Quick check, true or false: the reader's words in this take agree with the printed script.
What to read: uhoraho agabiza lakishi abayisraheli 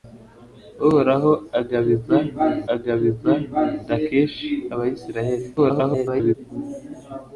false